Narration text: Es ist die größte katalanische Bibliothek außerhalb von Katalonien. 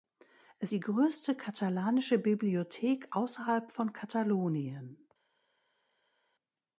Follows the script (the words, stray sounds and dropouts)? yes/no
no